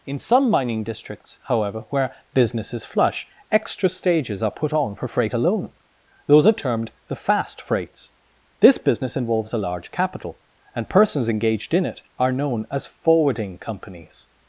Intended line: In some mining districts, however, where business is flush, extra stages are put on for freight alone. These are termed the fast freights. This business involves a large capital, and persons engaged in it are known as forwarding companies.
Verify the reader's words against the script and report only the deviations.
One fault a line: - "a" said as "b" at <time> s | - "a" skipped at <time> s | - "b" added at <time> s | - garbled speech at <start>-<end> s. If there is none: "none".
- "These" said as "Those" at 6.3 s